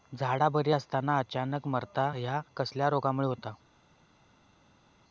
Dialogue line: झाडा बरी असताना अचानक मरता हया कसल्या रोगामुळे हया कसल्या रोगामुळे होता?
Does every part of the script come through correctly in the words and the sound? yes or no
no